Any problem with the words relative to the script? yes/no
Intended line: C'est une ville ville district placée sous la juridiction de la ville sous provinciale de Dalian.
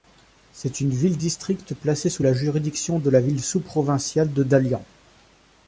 yes